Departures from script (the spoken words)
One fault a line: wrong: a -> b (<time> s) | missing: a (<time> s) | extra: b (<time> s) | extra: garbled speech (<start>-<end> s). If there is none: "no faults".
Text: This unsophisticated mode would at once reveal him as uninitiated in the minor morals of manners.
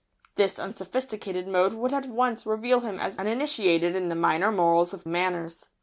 no faults